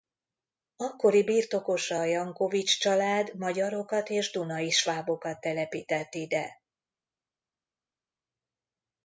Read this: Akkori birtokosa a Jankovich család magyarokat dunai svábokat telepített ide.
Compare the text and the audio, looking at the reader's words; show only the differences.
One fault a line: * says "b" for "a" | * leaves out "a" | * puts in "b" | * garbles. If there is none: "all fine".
* puts in "és"